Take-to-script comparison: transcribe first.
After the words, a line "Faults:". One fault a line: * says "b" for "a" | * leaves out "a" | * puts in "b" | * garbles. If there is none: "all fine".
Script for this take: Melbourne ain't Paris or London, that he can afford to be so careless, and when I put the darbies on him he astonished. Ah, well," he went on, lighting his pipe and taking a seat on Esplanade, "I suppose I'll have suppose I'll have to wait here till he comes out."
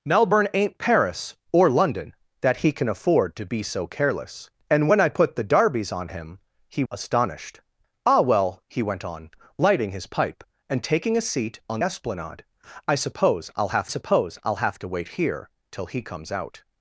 Melbourne ain't Paris or London, that he can afford to be so careless, and when I put the darbies on him he astonished. Ah, well," he went on, lighting his pipe and taking a seat on Esplanade, "I suppose I'll have suppose I'll have to wait here till he comes out."
Faults:
all fine